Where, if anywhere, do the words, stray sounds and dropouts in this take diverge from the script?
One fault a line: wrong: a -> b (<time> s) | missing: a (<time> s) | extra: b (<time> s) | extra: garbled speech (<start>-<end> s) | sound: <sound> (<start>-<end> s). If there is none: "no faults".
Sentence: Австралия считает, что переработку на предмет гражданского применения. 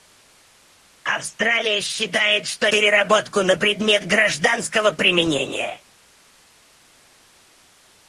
no faults